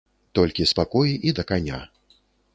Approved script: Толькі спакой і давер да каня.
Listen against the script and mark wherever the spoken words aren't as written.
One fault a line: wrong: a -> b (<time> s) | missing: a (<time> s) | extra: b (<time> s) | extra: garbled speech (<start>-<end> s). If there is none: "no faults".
missing: давер (1.3 s)